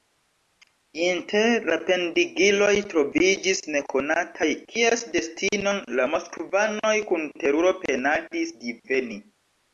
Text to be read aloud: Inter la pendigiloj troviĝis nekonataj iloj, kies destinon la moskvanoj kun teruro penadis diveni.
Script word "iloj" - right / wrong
wrong